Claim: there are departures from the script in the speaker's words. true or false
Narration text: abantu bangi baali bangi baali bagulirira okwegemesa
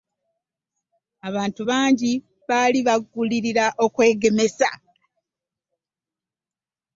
true